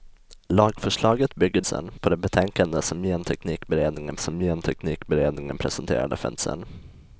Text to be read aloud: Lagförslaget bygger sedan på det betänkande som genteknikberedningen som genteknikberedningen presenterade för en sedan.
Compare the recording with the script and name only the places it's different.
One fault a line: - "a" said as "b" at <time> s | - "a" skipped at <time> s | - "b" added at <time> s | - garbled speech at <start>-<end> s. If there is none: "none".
none